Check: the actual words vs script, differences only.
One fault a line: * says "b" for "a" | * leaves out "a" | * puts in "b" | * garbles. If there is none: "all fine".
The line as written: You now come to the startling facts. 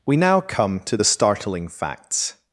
* says "We" for "You"